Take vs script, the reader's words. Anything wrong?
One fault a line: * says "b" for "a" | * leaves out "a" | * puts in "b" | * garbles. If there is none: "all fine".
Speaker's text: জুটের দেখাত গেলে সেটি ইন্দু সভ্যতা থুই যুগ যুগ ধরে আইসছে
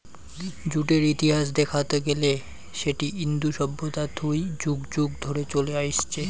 * puts in "ইতিহাস"
* puts in "চলে"